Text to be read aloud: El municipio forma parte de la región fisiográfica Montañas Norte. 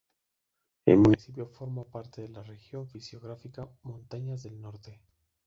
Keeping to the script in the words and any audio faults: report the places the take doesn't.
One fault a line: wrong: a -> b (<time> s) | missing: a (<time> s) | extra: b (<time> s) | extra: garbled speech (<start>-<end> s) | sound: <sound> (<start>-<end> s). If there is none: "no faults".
extra: del (4.4 s)